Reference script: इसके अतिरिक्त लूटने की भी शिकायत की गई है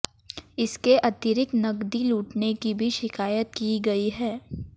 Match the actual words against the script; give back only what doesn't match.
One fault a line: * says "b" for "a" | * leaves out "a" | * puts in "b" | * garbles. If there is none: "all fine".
* puts in "नकदी"